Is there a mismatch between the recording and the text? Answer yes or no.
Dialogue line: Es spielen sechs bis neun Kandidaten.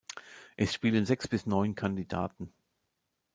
no